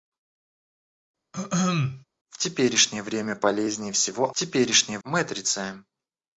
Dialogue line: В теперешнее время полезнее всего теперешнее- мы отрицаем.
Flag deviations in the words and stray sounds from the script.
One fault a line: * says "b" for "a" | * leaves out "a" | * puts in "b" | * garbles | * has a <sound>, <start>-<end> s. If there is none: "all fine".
* has a throat clearing, 1.3-2.1 s